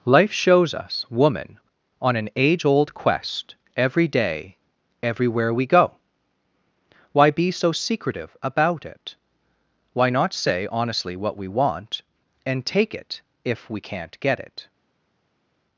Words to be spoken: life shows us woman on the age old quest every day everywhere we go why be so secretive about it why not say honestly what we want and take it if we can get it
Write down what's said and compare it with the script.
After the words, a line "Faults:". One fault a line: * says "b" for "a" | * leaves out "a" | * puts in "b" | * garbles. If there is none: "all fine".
life shows us woman on an age old quest every day everywhere we go why be so secretive about it why not say honestly what we want and take it if we can't get it
Faults:
* says "an" for "the"
* says "can't" for "can"